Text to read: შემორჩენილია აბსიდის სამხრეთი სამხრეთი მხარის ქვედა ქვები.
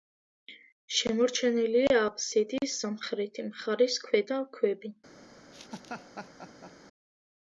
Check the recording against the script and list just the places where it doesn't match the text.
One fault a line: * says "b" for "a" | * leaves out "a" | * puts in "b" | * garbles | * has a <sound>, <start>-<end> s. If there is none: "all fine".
* leaves out "სამხრეთი"
* has a laugh, 5.5-6.7 s